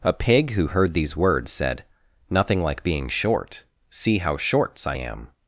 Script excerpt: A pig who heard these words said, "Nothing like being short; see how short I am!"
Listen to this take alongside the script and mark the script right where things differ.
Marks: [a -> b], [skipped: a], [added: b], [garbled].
A pig who heard these words said, "Nothing like being short; see how [short -> shorts] I am!"